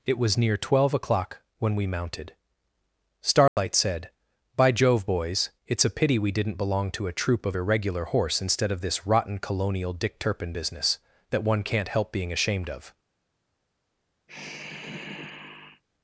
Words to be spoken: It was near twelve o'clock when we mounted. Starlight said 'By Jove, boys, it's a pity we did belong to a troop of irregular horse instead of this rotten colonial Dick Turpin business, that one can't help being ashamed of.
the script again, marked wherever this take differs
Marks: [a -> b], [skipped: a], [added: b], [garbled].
It was near twelve o'clock when we mounted. Starlight said 'By Jove, boys, it's a pity we [did -> didn't] belong to a troop of irregular horse instead of this rotten colonial Dick Turpin business, that one can't help being ashamed of.